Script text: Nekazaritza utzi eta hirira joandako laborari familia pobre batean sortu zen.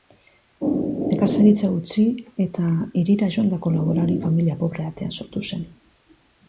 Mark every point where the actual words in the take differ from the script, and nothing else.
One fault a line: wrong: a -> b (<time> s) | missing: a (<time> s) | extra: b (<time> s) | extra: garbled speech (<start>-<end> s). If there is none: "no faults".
no faults